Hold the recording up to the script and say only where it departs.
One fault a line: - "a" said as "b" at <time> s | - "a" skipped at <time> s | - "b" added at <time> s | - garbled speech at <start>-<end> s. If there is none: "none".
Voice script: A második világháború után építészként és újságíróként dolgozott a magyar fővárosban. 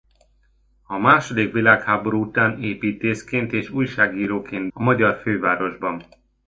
- "dolgozott" skipped at 4.7 s